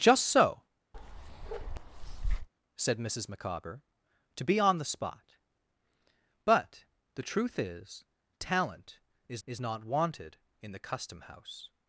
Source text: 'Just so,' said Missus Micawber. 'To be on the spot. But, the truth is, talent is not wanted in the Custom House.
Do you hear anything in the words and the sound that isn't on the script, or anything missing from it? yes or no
yes